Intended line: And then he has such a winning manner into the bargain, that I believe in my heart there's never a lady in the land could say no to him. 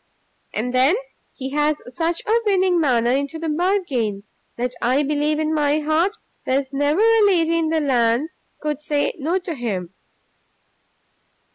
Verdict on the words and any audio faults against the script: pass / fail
pass